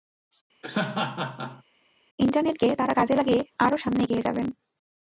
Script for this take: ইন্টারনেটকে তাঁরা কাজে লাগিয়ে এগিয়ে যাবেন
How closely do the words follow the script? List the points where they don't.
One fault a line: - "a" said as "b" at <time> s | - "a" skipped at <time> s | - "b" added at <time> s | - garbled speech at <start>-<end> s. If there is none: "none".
- "আরও সামনে" added at 3.6 s